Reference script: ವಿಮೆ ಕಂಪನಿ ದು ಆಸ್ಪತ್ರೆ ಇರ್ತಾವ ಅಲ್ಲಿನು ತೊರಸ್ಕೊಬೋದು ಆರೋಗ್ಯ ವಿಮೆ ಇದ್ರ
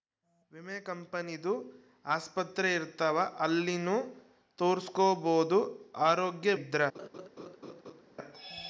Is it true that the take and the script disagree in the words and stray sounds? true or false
true